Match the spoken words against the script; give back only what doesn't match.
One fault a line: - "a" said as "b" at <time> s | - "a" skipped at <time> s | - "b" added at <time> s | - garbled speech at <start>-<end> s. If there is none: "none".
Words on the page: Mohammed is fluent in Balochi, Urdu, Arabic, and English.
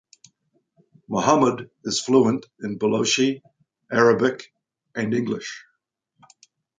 - "Urdu" skipped at 3.4 s